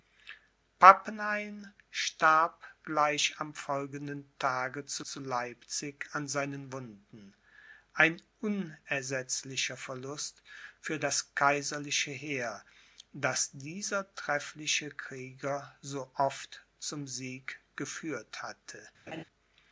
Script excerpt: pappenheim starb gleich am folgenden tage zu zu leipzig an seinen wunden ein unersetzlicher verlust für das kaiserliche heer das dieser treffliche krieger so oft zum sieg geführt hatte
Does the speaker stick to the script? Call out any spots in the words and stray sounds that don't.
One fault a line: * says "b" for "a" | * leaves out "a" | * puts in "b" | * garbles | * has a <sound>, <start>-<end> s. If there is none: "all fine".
* has a laugh, 19.1-19.2 s